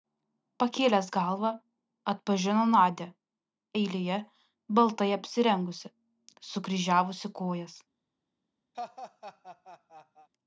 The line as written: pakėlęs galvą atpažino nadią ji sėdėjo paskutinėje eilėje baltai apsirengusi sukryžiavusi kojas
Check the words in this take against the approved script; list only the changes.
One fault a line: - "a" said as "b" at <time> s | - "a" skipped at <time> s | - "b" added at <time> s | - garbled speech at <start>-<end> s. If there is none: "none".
- "ji sėdėjo paskutinėje" skipped at 3.1 s